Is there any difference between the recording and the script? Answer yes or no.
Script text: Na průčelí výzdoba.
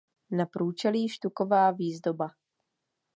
yes